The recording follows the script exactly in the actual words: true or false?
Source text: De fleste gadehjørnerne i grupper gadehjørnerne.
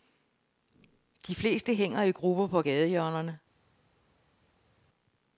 false